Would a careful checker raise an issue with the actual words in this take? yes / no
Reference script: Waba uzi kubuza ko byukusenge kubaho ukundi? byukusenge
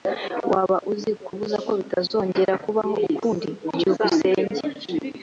yes